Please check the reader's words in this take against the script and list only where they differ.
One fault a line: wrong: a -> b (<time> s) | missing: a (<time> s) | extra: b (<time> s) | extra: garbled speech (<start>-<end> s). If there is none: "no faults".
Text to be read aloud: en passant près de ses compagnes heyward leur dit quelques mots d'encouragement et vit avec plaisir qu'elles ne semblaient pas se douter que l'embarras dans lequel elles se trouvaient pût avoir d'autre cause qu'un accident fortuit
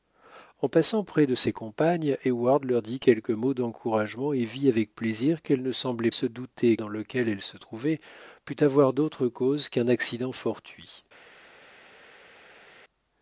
missing: pas (6.1 s)
missing: que l'embarras (6.8 s)